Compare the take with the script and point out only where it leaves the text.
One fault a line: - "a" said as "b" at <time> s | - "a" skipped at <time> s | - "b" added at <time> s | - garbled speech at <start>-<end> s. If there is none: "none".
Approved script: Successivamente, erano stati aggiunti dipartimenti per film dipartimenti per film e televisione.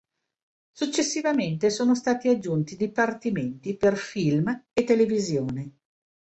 - "erano" said as "sono" at 1.7 s
- "dipartimenti per film" skipped at 4.7 s